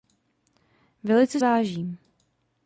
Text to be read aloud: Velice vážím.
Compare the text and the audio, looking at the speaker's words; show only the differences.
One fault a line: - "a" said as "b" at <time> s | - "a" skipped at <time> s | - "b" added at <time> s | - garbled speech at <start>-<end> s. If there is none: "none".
none